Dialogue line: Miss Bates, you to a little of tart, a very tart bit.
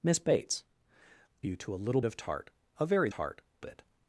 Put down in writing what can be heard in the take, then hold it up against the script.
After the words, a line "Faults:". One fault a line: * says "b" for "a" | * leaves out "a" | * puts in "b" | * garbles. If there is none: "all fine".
Miss Bates, you to a little of tart, a very tart bit.
Faults:
all fine